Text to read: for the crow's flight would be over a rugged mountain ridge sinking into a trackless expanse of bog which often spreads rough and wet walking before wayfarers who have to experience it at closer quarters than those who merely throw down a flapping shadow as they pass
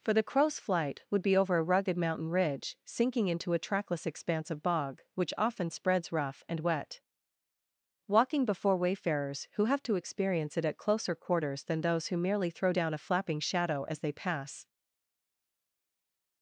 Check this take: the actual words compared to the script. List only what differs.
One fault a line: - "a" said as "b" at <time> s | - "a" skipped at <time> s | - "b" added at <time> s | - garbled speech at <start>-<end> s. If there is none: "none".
none